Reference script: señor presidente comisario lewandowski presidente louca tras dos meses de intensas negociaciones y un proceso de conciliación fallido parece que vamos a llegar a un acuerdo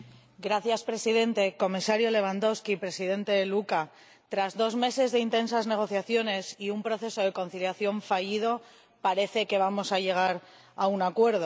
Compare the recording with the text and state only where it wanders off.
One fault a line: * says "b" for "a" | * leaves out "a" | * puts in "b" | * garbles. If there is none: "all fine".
all fine